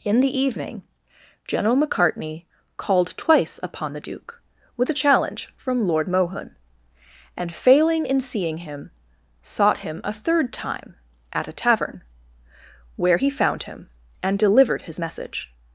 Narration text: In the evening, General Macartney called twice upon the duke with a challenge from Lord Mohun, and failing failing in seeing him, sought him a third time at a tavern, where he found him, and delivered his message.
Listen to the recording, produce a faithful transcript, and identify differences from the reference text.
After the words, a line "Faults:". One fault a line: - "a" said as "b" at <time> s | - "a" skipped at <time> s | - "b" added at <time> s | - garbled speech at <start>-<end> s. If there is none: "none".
In the evening, General Macartney called twice upon the duke with a challenge from Lord Mohun, and failing in seeing him, sought him a third time at a tavern, where he found him, and delivered his message.
Faults:
- "failing" skipped at 8.1 s